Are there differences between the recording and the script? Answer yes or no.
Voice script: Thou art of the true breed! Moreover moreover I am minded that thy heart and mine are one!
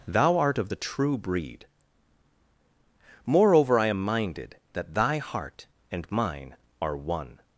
yes